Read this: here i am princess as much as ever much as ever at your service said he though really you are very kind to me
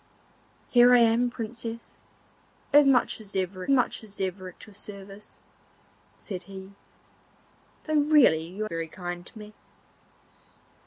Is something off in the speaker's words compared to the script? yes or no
no